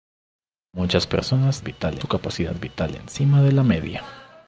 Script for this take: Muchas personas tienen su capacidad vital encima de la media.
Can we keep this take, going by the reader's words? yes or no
no